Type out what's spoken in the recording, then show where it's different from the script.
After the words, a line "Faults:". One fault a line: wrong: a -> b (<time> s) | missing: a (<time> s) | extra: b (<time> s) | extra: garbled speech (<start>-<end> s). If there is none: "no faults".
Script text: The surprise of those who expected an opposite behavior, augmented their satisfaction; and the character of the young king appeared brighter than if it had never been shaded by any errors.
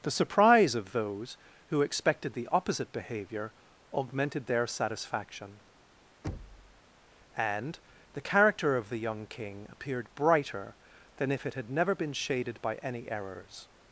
The surprise of those who expected the opposite behavior, augmented their satisfaction; and the character of the young king appeared brighter than if it had never been shaded by any errors.
Faults:
wrong: an -> the (2.3 s)